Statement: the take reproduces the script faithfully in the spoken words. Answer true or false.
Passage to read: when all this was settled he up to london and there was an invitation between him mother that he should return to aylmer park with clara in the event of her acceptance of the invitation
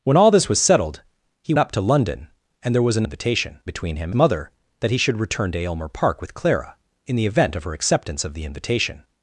true